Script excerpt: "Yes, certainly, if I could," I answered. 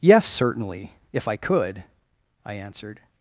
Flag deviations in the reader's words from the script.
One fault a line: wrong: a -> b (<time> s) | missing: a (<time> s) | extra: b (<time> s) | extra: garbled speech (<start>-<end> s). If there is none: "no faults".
no faults